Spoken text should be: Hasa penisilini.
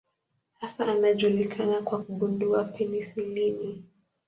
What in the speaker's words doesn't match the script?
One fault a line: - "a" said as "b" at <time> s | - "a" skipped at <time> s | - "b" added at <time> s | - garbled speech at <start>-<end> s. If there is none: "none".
- "anajulikana kwa kugundua" added at 0.8 s